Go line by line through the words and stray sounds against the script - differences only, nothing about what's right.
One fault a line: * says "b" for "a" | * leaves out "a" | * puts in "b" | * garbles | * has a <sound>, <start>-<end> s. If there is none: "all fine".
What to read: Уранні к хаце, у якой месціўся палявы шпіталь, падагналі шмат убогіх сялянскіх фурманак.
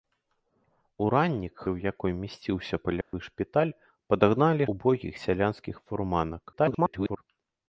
* leaves out "хаце"
* has a dropout, 3.0-3.1 s
* leaves out "шмат"
* garbles